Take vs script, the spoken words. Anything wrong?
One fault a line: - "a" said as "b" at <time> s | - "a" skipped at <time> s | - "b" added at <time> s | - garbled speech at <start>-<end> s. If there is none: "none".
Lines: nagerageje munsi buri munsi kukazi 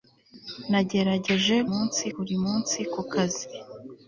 none